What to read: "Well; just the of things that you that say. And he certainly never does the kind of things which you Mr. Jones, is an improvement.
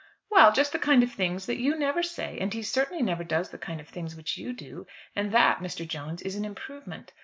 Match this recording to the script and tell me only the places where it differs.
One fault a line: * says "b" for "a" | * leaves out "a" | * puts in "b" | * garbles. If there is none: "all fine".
* puts in "kind"
* says "never" for "that"
* puts in "do and that"